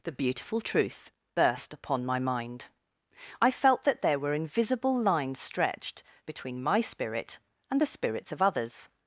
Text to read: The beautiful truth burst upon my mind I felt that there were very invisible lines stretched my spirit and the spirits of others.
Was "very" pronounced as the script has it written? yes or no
no